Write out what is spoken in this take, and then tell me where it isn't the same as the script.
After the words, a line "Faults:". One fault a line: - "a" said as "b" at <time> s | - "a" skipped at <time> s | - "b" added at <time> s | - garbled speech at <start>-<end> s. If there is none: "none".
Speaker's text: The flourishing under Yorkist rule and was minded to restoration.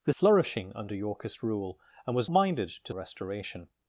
The flourishing under Yorkist rule and was minded to restoration.
Faults:
none